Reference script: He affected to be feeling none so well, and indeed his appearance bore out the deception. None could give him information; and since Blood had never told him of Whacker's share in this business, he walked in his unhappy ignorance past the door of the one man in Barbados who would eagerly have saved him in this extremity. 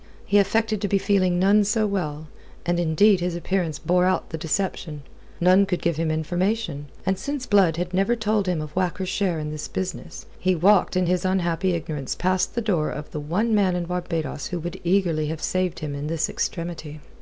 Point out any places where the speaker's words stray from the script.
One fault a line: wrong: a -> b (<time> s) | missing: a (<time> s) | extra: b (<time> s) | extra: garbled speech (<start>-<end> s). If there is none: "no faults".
no faults